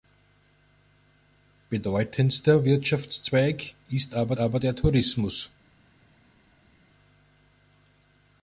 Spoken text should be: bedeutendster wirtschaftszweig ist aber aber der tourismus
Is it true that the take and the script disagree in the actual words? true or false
false